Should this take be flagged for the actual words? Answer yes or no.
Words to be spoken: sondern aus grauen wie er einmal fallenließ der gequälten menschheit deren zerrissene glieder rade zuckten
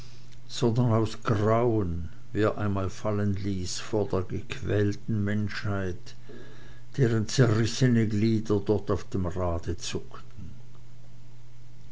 yes